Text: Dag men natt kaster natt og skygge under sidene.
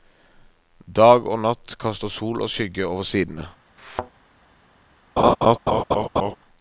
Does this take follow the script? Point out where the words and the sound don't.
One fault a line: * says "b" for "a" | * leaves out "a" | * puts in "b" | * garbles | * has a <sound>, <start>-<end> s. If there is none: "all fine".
* says "og" for "men"
* says "sol" for "natt"
* says "over" for "under"
* has a thud, 3.8-4.1 s
* has a laugh, 5.2-6.4 s